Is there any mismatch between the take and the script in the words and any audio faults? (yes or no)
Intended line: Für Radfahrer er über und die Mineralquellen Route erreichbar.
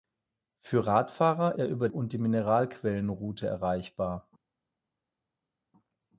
no